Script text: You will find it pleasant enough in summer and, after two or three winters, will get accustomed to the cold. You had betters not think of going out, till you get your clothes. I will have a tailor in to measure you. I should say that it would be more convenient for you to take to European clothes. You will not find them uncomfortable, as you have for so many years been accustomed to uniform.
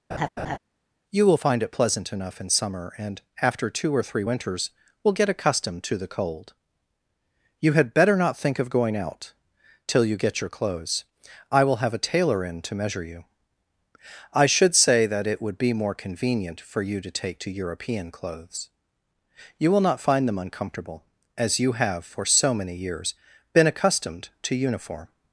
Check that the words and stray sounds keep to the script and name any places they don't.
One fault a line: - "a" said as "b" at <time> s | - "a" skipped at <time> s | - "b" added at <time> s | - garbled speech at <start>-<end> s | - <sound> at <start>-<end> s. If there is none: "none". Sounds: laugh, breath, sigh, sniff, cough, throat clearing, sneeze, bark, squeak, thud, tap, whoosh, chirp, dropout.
- laugh at 0.1-0.6 s
- "betters" said as "better" at 7.9 s